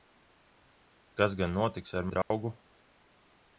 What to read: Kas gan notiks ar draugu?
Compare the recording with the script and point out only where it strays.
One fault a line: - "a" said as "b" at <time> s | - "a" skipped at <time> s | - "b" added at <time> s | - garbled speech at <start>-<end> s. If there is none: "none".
none